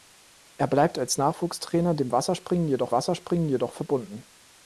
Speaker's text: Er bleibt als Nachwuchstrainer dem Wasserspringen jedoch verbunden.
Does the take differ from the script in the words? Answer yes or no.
yes